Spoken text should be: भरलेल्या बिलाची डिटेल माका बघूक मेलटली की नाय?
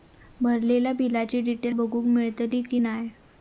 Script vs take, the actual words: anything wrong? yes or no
yes